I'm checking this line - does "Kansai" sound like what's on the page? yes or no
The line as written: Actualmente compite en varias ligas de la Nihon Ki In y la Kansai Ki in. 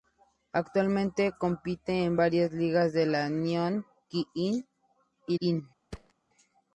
no